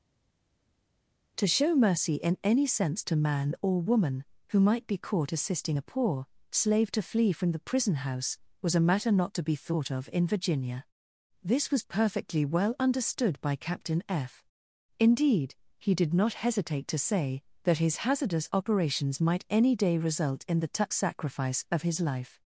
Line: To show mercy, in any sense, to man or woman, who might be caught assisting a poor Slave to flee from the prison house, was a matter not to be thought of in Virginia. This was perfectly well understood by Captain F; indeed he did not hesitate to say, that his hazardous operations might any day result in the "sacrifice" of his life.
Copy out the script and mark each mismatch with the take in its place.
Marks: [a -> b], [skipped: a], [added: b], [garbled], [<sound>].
To show mercy, in any sense, to man or woman, who might be caught assisting a poor Slave to flee from the prison house, was a matter not to be thought of in Virginia. This was perfectly well understood by Captain F; indeed he did not hesitate to say, that his hazardous operations might any day result in the [added: tuck] "sacrifice" of his life.